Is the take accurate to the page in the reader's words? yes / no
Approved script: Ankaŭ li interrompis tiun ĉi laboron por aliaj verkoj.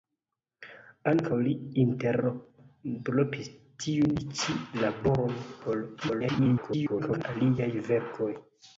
no